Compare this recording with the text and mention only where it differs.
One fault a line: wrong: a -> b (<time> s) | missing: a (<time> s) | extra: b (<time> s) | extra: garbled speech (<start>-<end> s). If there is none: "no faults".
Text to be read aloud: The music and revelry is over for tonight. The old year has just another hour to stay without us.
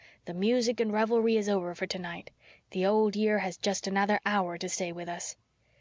wrong: without -> with (4.9 s)